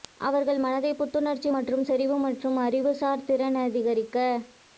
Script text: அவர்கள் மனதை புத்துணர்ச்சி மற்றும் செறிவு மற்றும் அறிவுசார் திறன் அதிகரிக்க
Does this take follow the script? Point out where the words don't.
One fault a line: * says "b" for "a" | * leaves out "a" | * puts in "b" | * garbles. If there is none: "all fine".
all fine